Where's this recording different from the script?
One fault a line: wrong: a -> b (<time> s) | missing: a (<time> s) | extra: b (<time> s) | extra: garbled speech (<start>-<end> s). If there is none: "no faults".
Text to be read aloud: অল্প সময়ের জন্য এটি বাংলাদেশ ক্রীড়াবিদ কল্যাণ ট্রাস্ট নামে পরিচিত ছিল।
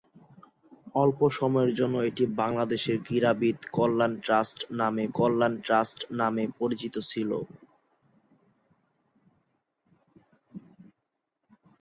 extra: কল্যাণ ট্রাস্ট নামে (5.2 s)